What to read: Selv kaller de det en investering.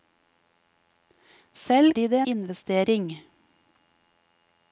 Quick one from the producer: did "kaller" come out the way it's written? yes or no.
no